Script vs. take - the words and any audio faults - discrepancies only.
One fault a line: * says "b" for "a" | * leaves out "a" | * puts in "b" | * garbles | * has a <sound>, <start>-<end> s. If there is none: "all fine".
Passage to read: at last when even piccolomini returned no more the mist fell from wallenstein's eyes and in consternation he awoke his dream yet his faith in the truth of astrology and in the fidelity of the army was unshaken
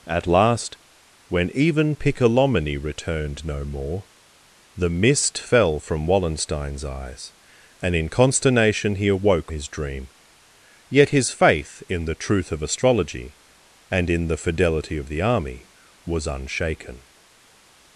all fine